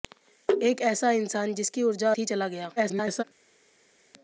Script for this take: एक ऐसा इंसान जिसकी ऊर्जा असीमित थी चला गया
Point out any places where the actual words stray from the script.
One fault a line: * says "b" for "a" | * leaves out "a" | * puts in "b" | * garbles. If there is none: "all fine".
* leaves out "असीमित"
* garbles